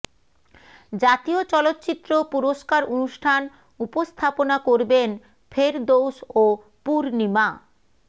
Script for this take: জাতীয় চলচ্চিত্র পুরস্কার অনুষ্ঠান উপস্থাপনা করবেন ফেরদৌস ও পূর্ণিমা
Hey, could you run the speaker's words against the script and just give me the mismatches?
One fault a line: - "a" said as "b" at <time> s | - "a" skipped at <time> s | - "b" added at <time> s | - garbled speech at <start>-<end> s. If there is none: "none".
none